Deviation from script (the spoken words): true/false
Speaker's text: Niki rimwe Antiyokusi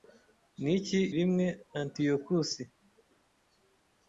false